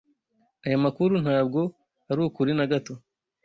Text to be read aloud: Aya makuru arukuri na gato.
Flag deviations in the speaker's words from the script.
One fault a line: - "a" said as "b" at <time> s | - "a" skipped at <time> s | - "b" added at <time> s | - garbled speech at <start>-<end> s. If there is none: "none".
- "ntabwo" added at 1.2 s